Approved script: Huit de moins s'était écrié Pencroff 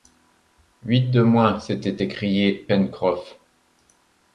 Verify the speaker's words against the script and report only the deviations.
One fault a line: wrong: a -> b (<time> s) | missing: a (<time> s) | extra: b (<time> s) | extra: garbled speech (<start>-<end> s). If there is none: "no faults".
no faults